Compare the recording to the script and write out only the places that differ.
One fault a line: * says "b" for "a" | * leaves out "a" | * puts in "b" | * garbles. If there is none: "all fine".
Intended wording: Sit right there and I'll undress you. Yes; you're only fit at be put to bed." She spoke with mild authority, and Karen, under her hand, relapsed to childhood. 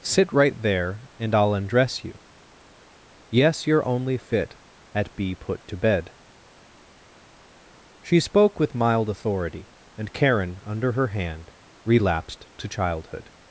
all fine